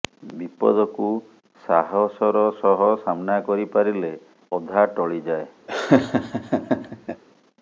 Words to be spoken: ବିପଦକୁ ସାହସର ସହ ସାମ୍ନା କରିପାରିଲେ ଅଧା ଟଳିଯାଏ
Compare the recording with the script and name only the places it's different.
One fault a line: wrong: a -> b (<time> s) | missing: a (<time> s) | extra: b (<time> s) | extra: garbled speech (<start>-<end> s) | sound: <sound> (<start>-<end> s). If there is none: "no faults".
sound: laugh (5.7-7.2 s)